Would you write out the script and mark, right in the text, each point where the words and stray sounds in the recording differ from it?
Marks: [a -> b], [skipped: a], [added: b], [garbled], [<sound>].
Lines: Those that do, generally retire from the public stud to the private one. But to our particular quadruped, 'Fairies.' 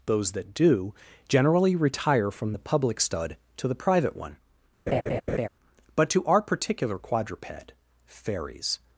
Those that do, generally retire from the public stud to the private one. [laugh] But to our particular quadruped, 'Fairies.'